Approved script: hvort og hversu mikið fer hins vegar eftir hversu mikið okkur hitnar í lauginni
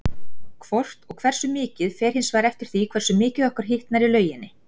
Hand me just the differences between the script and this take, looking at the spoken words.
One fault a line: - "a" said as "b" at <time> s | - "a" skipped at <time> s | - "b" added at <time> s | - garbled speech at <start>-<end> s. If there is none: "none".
- "því" added at 2.7 s